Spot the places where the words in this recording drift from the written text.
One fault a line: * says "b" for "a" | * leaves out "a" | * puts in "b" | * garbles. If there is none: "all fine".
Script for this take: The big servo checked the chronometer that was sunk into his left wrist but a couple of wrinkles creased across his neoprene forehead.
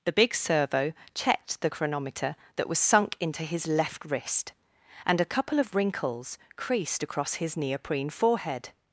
* says "and" for "but"